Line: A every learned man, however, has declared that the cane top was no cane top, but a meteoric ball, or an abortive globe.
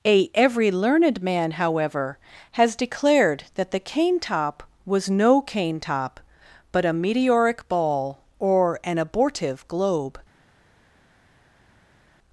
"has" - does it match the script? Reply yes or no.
yes